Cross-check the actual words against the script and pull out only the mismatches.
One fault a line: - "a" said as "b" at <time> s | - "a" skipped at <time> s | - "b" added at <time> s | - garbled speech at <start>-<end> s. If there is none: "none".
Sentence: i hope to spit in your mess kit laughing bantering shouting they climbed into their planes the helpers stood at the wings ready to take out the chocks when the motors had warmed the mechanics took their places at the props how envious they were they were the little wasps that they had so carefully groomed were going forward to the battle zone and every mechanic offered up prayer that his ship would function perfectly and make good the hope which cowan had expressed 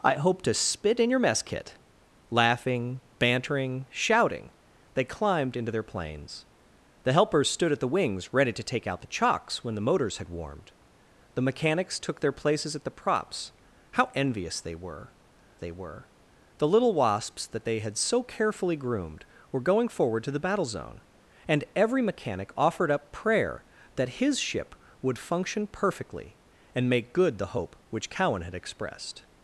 none